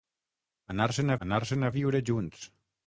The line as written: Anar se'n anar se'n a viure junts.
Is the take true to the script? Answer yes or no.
yes